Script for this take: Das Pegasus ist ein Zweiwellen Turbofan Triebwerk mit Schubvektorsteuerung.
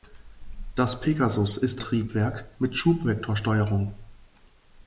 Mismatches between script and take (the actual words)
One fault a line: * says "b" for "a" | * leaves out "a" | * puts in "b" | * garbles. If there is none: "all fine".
* leaves out "ein Zweiwellen Turbofan"